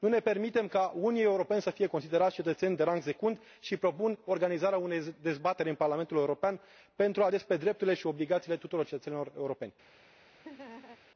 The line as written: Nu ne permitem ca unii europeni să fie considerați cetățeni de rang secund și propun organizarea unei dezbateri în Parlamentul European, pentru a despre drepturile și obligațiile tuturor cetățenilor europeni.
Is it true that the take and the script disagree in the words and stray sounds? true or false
true